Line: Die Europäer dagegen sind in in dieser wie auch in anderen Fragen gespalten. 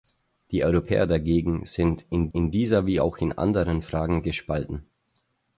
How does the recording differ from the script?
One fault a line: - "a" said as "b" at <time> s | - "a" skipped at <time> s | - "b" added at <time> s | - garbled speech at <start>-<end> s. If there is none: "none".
none